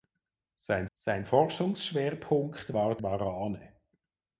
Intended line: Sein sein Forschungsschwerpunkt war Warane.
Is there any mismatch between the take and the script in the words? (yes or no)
no